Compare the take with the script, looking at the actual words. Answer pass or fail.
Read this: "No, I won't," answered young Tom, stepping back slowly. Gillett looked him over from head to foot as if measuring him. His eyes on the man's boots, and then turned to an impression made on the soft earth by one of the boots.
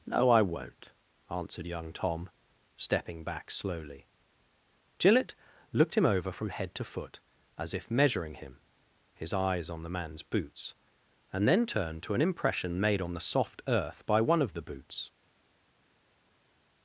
pass